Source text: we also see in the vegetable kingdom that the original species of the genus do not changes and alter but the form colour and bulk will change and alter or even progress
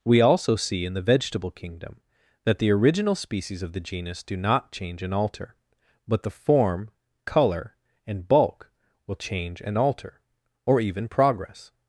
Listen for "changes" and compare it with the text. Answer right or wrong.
wrong